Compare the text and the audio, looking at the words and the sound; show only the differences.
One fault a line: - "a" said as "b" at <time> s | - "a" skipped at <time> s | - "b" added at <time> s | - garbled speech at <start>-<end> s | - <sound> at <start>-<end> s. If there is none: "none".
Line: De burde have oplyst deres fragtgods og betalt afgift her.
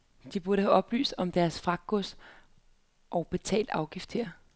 - "om" added at 1.2 s